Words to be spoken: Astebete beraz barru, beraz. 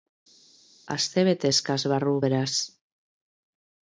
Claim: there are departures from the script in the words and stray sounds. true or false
true